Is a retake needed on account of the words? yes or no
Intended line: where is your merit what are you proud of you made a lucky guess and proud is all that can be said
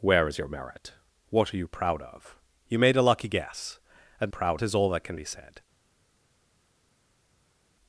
no